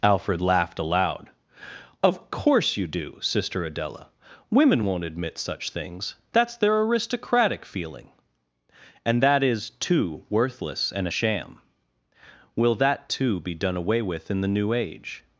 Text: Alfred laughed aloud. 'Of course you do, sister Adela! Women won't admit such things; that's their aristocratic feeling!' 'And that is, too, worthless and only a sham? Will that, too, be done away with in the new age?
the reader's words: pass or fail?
fail